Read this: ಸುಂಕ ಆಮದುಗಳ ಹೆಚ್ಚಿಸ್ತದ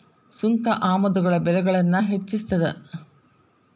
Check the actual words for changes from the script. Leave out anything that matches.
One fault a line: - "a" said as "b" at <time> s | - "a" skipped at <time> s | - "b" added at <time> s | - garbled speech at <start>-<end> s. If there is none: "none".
- "ಬೆಲೆಗಳನ್ನ" added at 1.4 s